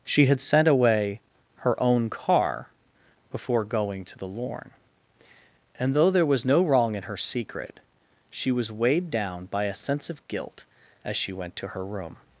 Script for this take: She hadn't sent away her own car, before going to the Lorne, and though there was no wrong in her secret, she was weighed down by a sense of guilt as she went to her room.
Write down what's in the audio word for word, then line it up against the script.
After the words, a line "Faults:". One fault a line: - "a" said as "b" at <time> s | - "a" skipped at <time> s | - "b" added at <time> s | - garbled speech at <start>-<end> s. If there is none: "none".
She had sent away her own car, before going to the Lorne, and though there was no wrong in her secret, she was weighed down by a sense of guilt as she went to her room.
Faults:
- "hadn't" said as "had" at 0.2 s